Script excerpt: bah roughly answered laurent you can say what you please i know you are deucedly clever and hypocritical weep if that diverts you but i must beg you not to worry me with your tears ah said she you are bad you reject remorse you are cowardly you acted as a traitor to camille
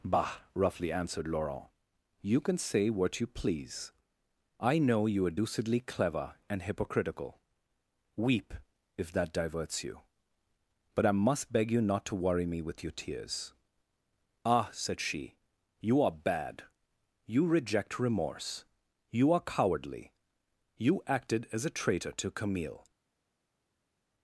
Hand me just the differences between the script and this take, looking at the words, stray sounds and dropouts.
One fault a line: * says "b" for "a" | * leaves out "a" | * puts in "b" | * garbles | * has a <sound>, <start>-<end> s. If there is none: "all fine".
all fine